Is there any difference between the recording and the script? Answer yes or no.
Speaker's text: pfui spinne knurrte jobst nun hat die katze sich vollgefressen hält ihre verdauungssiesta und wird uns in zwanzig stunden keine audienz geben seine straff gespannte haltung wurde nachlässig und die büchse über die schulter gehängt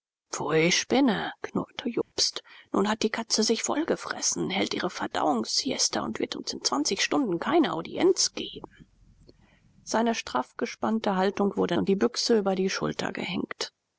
yes